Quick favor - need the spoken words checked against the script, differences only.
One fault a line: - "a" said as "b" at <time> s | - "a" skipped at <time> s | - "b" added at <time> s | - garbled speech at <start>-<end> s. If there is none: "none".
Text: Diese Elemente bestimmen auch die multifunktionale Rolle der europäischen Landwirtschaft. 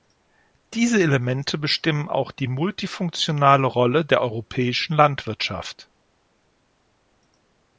none